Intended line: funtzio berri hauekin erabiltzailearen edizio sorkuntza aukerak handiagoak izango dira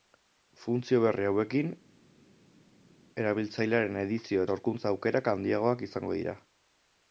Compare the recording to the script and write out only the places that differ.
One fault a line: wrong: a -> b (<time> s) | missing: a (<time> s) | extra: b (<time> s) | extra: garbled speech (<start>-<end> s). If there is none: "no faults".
no faults